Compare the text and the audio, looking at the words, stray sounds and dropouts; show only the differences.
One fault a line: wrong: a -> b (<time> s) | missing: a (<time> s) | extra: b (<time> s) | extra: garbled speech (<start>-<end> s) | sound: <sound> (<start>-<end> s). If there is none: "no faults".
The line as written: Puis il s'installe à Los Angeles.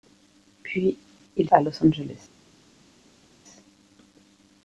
missing: s'installe (1.5 s)